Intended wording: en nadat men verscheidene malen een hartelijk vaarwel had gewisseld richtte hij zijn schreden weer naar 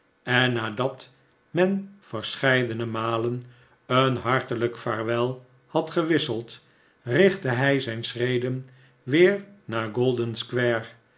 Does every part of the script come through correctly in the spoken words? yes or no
yes